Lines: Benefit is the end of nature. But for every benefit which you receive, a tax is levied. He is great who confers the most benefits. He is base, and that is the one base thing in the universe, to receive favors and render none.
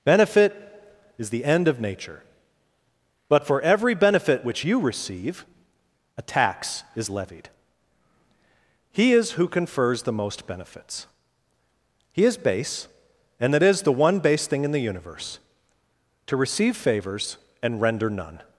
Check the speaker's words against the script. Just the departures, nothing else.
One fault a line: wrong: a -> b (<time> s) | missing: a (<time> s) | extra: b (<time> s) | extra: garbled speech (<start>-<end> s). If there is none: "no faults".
missing: great (9.3 s)